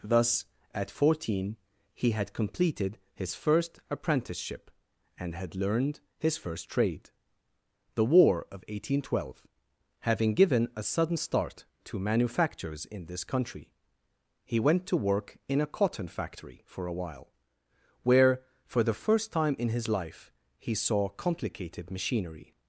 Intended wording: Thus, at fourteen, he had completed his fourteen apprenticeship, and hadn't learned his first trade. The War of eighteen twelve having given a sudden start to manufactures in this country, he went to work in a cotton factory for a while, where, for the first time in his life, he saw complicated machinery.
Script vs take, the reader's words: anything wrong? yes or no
yes